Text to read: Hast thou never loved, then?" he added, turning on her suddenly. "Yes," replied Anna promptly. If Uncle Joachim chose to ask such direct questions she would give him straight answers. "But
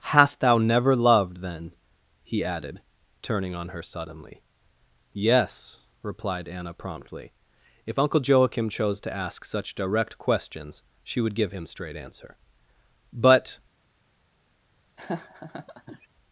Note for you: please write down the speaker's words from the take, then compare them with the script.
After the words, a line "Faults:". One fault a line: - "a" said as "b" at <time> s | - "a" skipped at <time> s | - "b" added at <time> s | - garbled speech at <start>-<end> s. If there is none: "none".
Hast thou never loved, then?" he added, turning on her suddenly. "Yes," replied Anna promptly. If Uncle Joachim chose to ask such direct questions she would give him straight answer. "But
Faults:
- "answers" said as "answer" at 11.9 s